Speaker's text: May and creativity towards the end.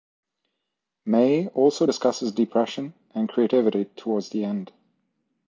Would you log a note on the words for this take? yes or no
yes